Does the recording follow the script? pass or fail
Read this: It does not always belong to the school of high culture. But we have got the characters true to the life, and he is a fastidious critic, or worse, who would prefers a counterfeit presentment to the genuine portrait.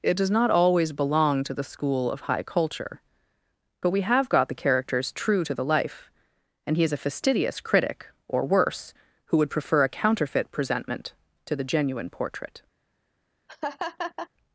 fail